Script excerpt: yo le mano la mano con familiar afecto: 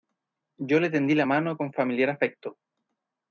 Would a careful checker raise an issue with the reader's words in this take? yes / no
yes